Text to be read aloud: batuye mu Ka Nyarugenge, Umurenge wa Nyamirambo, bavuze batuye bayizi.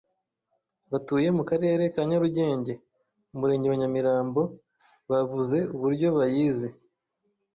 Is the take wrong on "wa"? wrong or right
right